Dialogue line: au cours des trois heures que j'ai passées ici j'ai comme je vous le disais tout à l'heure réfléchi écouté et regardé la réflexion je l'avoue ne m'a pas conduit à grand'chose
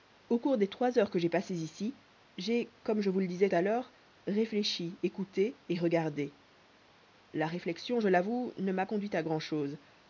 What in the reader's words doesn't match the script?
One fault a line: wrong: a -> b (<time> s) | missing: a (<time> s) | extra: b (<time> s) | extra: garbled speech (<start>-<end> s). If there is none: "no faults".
missing: tout (3.5 s)
missing: pas (8.8 s)